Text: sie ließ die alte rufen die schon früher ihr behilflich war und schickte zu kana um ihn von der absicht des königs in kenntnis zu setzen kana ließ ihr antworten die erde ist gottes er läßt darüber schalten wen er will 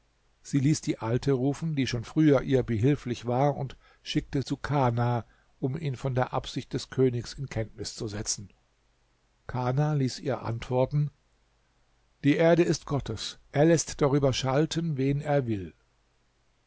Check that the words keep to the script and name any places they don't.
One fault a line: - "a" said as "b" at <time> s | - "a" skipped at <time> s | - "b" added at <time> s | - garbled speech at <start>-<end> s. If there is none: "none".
none